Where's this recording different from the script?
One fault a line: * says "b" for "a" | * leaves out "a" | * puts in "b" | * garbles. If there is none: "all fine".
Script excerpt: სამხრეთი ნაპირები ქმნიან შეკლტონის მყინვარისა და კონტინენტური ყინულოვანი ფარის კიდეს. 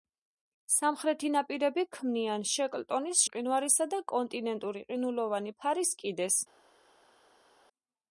all fine